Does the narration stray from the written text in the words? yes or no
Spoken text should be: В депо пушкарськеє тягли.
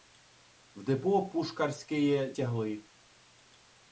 no